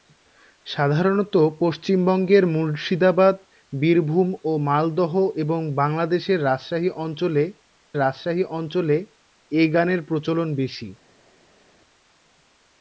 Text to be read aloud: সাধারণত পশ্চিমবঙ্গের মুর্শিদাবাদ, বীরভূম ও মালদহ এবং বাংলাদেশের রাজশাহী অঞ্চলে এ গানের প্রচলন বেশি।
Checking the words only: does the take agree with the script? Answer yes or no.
no